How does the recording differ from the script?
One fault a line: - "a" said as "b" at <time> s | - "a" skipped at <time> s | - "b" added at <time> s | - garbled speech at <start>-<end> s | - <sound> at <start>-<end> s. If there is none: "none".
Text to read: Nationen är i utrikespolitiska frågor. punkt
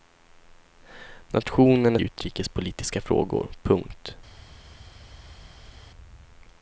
none